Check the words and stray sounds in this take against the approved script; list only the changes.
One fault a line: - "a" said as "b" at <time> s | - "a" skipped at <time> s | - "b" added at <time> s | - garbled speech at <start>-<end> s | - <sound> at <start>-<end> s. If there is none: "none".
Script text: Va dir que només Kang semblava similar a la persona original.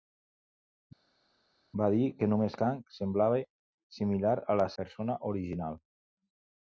none